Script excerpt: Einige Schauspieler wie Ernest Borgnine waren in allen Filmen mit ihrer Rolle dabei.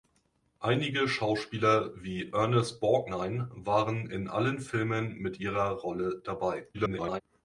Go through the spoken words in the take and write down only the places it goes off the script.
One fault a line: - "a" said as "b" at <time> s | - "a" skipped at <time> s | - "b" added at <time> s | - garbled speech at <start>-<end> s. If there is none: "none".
- garbled speech at 6.7-7.2 s